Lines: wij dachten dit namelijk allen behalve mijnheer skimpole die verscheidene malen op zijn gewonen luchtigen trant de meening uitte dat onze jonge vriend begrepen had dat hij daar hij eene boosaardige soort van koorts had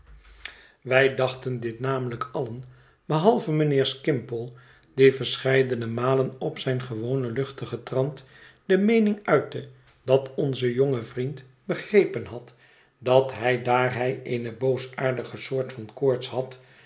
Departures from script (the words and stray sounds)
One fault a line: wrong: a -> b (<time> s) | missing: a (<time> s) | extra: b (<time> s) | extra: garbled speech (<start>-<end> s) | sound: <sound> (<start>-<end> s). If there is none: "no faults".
no faults